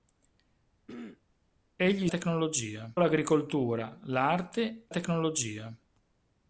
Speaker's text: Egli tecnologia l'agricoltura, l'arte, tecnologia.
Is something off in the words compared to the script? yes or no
no